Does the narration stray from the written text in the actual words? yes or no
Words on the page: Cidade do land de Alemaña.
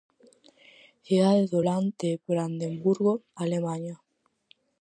yes